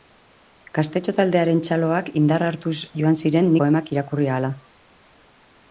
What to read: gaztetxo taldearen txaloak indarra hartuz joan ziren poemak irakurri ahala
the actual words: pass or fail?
pass